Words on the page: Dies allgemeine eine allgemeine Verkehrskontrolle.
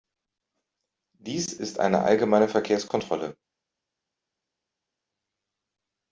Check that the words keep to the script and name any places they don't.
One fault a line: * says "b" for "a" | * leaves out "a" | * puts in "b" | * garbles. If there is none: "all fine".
* says "ist" for "allgemeine"